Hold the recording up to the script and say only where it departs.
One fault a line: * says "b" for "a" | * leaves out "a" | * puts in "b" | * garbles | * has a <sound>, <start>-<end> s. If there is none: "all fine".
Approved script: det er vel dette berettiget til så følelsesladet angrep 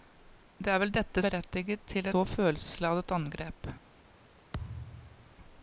* has a thud, 4.5-5.4 s